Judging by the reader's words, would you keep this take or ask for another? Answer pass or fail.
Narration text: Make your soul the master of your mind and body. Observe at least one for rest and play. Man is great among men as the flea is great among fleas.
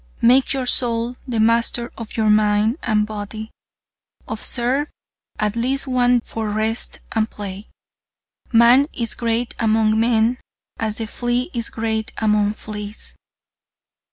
pass